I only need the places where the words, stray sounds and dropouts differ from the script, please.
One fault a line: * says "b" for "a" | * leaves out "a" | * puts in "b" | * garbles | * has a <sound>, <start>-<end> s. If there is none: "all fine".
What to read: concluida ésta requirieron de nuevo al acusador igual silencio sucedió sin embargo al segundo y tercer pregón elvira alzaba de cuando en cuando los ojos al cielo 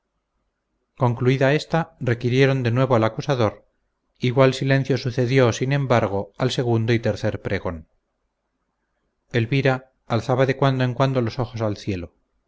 all fine